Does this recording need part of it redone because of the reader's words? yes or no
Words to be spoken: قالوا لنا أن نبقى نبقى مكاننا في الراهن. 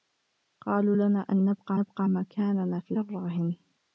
no